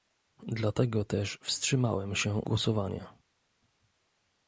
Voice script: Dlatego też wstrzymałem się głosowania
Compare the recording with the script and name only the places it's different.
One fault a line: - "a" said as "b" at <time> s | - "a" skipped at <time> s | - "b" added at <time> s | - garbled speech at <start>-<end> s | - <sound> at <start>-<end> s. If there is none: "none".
none